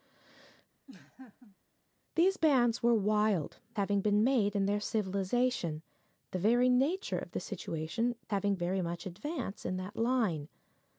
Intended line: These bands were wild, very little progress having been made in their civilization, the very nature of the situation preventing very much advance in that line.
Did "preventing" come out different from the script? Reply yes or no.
yes